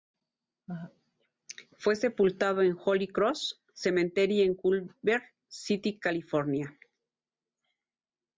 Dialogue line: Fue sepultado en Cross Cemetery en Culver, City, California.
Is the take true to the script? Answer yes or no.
no